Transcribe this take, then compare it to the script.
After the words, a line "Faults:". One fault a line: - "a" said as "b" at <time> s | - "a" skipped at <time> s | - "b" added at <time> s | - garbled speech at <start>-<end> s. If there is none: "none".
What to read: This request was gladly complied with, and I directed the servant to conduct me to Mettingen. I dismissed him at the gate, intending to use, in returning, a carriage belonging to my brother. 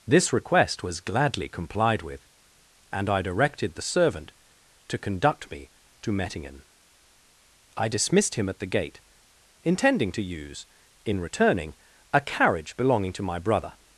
This request was gladly complied with, and I directed the servant to conduct me to Mettingen. I dismissed him at the gate, intending to use, in returning, a carriage belonging to my brother.
Faults:
none